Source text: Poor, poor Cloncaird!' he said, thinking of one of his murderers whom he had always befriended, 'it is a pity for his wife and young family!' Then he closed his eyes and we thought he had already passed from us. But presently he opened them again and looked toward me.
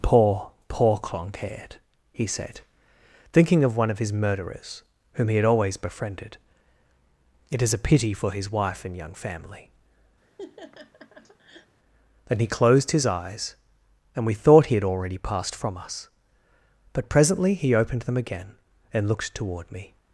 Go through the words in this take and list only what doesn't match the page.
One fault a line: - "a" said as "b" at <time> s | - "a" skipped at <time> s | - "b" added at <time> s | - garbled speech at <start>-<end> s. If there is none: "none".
none